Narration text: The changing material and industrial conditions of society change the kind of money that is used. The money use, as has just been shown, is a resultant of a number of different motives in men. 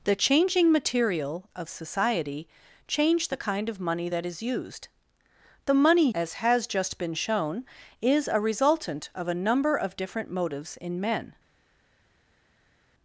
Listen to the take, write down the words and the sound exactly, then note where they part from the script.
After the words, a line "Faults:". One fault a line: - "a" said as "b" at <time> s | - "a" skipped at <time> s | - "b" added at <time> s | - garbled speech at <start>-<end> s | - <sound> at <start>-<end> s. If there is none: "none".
The changing material of society change the kind of money that is used. The money as has just been shown, is a resultant of a number of different motives in men.
Faults:
- "and industrial conditions" skipped at 1.5 s
- "use" skipped at 6.1 s